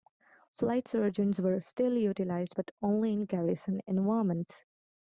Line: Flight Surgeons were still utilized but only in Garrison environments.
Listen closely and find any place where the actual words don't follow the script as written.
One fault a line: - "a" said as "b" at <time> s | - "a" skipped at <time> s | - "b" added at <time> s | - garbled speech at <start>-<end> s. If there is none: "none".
none